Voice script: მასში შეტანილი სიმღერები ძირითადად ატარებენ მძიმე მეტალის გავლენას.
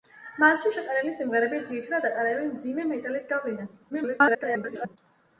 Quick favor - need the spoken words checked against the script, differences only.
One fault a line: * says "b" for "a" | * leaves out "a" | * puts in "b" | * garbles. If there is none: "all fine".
* garbles